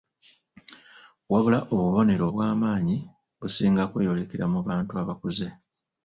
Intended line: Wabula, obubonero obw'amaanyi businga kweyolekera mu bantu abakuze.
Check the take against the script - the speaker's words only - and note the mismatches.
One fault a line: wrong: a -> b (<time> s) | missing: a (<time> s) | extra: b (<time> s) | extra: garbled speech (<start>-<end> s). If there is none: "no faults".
no faults